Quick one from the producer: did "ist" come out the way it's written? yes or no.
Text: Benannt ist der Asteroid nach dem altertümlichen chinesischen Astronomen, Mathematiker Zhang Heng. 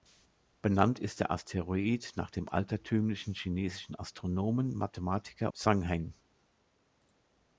yes